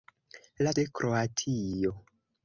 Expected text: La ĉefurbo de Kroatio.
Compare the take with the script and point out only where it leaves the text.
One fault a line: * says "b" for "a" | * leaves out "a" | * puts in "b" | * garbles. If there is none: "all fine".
* leaves out "ĉefurbo"